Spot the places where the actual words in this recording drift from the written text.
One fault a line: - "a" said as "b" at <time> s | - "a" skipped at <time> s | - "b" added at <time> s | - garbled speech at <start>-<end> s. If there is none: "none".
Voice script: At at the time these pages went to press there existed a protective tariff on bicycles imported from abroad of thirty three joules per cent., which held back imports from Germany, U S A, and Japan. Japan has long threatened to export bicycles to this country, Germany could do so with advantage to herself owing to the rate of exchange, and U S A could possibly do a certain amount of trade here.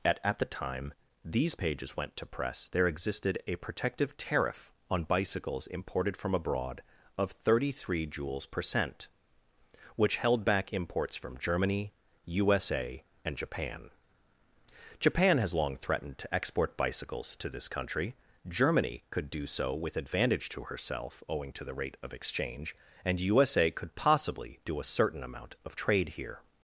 none